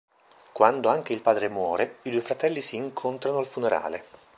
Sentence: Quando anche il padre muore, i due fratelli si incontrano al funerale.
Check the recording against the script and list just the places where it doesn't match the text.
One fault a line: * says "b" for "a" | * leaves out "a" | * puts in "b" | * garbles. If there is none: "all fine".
all fine